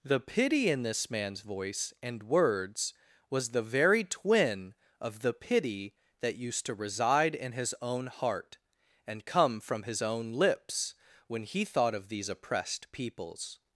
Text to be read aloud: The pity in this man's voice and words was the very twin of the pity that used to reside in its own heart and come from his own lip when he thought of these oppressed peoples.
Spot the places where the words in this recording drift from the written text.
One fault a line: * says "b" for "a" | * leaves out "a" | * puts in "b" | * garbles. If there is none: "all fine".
* says "his" for "its"
* says "lips" for "lip"